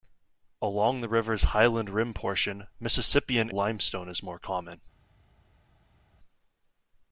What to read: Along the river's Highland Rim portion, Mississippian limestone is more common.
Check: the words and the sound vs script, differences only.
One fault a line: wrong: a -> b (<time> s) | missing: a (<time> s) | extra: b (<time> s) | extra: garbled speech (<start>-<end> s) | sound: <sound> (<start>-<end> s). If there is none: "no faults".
no faults